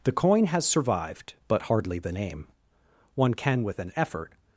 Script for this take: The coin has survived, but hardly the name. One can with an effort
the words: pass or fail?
pass